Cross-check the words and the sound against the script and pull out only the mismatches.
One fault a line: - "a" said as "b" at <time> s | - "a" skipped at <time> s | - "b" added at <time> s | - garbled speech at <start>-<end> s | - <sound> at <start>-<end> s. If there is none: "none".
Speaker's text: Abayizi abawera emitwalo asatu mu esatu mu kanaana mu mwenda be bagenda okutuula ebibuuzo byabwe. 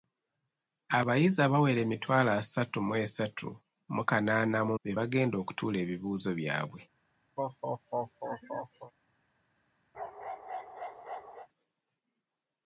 - "mwenda" skipped at 4.8 s
- laugh at 7.4-8.9 s
- bark at 9.9-11.5 s